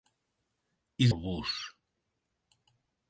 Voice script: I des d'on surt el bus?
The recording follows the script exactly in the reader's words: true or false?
false